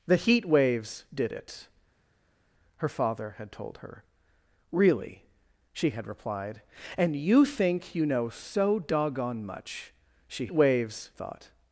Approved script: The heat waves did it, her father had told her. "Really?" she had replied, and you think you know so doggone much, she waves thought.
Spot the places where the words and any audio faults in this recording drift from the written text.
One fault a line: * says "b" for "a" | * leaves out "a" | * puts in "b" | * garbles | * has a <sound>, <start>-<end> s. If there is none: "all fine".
all fine